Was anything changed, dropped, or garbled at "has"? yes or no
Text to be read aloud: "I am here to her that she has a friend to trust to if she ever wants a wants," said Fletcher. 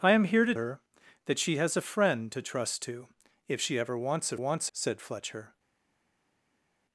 no